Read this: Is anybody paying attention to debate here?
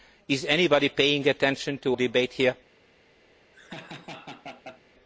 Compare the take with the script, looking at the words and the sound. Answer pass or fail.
fail